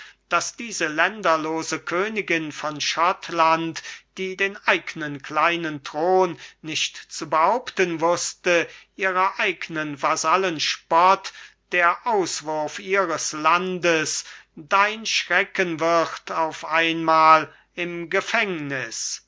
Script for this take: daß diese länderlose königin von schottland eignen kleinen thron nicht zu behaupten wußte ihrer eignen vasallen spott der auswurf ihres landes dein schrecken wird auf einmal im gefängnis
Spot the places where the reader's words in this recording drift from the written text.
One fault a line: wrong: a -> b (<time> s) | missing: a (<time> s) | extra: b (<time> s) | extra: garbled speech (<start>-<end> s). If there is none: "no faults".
extra: die den (4.2 s)